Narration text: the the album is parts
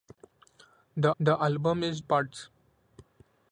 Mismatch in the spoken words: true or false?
false